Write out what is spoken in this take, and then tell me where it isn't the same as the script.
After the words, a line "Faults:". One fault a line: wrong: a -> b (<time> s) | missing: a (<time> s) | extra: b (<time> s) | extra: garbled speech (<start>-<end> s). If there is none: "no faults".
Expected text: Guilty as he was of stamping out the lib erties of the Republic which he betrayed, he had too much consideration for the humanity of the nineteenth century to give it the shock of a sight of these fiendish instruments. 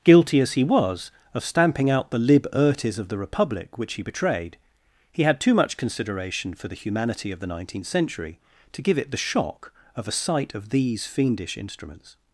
Guilty as he was of stamping out the lib erties of the Republic which he betrayed, he had too much consideration for the humanity of the nineteenth century to give it the shock of a sight of these fiendish instruments.
Faults:
no faults